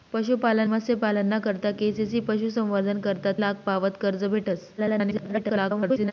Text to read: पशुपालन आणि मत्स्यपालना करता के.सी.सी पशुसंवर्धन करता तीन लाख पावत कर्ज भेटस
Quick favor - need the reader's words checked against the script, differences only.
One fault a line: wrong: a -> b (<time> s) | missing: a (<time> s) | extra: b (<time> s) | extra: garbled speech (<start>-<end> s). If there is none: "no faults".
missing: आणि (0.7 s)
missing: तीन (3.3 s)
extra: garbled speech (4.8-6.1 s)